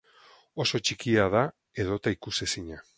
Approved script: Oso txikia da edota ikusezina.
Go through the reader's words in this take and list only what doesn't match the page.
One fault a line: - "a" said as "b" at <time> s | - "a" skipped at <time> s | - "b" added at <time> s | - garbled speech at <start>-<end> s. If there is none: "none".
none